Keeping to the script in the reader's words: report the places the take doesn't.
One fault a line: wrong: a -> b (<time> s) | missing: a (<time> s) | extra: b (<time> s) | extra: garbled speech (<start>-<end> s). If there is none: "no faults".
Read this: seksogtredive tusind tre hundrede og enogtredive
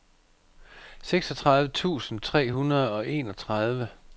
no faults